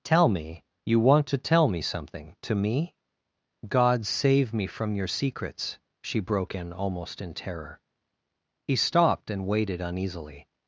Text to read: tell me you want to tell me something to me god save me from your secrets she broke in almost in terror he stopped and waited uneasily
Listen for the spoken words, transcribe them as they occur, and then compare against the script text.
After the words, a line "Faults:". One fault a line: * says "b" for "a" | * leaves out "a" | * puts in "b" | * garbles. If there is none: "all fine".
tell me you want to tell me something to me god save me from your secrets she broke in almost in terror he stopped and waited uneasily
Faults:
all fine